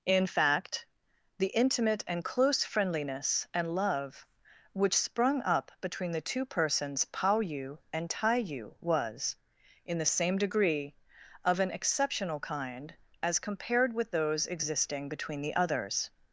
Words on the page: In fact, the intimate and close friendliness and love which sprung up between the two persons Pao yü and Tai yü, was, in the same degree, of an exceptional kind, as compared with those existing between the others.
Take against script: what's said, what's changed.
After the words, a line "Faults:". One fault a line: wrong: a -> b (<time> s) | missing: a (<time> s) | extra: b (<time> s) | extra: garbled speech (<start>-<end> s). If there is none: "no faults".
In fact, the intimate and close friendliness and love which sprung up between the two persons Pao yü and Tai yü, was, in the same degree, of an exceptional kind, as compared with those existing between the others.
Faults:
no faults